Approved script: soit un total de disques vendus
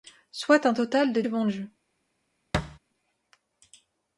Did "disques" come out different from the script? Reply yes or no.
yes